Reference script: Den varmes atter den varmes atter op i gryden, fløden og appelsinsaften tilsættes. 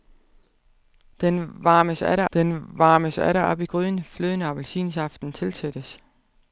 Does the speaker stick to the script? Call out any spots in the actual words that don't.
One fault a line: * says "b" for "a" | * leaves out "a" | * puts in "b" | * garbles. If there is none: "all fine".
all fine